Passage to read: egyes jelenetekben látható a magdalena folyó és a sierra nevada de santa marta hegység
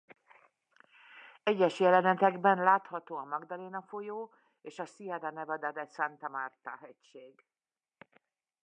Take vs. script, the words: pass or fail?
pass